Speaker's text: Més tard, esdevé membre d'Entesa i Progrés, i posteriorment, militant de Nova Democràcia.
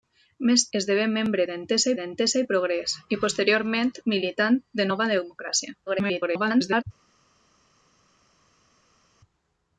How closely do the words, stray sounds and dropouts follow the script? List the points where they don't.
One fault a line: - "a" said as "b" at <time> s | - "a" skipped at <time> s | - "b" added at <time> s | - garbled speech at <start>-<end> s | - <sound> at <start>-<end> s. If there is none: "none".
- "tard" skipped at 0.6 s
- "d'Entesa" added at 2.0 s
- garbled speech at 5.9-6.8 s